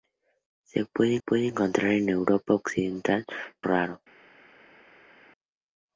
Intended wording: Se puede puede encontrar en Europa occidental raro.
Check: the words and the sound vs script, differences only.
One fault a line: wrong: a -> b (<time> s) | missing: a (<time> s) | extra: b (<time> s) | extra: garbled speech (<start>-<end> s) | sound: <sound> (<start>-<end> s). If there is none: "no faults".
no faults